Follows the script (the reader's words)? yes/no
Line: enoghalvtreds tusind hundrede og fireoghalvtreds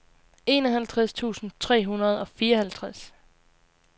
no